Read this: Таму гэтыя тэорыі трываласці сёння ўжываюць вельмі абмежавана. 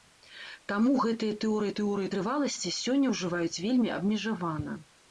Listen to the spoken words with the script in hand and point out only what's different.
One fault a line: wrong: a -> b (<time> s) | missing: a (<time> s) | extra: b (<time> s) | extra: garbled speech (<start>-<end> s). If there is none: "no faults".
extra: тэорыі (1.8 s)